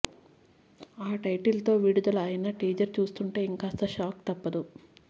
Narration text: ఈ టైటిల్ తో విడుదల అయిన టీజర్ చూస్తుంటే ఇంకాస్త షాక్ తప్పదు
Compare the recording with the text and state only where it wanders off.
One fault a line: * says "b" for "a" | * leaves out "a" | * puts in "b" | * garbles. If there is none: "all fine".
* says "ఆ" for "ఈ"